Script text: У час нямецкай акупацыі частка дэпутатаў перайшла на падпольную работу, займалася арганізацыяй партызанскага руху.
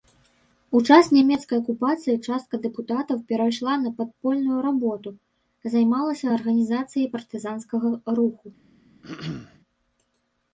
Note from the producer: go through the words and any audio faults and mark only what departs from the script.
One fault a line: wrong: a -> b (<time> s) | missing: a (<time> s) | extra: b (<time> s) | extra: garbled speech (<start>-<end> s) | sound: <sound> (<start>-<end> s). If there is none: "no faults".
sound: throat clearing (9.0-9.6 s)